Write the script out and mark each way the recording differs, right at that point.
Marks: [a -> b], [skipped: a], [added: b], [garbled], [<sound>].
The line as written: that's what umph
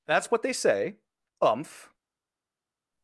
that's what [added: they say] umph